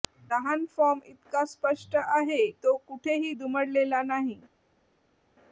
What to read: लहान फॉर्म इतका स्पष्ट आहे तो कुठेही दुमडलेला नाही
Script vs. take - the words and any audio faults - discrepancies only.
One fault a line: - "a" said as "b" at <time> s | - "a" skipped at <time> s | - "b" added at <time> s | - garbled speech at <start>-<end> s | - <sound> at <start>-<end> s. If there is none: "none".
none